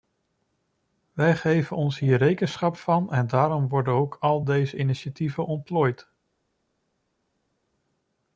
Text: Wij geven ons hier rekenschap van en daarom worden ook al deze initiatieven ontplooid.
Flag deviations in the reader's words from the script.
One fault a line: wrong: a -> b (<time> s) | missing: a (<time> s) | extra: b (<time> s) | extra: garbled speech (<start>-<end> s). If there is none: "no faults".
no faults